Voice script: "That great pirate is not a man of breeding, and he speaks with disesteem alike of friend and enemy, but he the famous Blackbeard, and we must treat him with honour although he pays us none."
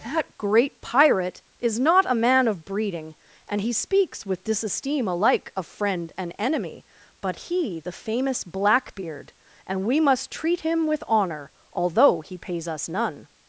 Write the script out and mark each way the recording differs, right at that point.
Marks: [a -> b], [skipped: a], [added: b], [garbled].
"That great pirate is not a man of breeding, and he speaks with disesteem alike of friend and enemy, but he the famous Blackbeard, and we must treat him with honour although he pays us none."